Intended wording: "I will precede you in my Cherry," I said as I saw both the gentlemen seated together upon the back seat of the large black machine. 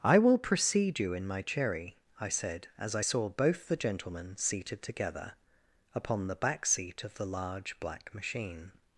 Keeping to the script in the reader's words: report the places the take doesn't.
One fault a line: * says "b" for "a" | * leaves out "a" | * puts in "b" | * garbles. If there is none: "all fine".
all fine